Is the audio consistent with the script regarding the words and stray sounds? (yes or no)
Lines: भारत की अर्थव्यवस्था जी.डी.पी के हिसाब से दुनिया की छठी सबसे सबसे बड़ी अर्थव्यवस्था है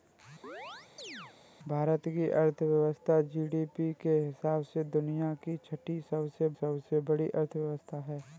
no